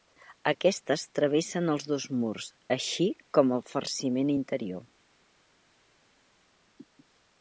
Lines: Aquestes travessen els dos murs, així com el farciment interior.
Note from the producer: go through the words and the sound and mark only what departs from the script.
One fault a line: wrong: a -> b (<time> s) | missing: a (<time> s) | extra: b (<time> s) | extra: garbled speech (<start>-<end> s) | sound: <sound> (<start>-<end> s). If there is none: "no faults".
no faults